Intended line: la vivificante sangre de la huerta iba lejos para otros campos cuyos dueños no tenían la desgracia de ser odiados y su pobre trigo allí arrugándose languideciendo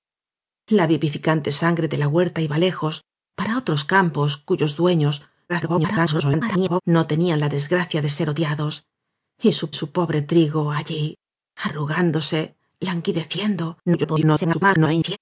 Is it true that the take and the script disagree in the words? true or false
true